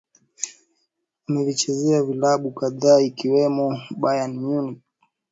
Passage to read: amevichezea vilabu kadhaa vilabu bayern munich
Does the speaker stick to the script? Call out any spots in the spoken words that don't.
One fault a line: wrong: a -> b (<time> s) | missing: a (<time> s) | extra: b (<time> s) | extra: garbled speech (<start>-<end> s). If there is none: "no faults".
wrong: vilabu -> ikiwemo (3.0 s)